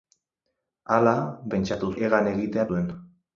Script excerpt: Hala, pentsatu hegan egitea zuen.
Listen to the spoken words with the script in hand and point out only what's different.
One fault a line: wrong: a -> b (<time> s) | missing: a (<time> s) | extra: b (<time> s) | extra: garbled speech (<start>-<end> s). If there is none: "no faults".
no faults